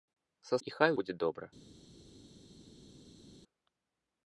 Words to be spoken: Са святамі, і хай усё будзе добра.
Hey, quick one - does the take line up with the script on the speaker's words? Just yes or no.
no